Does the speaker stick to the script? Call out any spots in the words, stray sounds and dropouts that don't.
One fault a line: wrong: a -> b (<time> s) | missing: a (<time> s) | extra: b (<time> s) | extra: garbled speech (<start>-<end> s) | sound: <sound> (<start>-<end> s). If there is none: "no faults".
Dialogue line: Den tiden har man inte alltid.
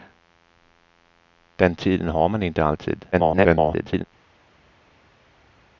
extra: garbled speech (3.1-4.0 s)